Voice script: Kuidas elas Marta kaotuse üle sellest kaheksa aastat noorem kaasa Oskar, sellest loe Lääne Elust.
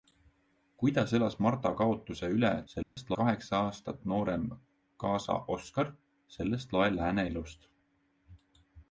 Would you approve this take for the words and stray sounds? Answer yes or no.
no